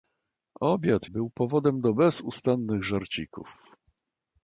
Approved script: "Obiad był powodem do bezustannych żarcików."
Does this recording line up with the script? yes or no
yes